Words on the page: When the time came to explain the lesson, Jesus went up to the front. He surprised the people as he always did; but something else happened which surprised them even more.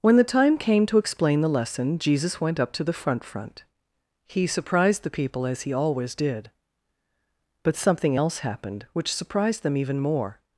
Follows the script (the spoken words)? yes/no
no